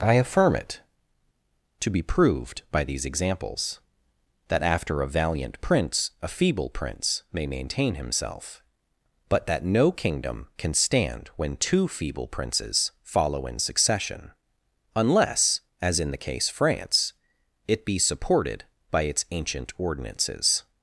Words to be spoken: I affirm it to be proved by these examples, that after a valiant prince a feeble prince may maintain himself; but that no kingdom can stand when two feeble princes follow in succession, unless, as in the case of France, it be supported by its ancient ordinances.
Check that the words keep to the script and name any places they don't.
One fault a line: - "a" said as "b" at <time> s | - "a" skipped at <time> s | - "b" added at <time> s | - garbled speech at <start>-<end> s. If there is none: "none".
- "of" skipped at 16.5 s